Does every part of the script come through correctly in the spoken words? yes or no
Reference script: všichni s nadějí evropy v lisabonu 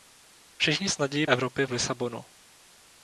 yes